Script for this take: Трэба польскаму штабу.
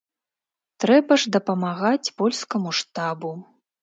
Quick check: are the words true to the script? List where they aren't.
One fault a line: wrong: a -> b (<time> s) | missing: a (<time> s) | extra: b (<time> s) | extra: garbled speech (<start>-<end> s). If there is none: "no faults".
extra: ж дапамагаць (1.2 s)